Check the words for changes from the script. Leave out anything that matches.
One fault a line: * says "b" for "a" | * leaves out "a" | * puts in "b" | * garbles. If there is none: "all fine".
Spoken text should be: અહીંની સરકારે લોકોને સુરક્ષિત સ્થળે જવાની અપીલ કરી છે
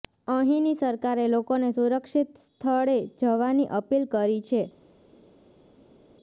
all fine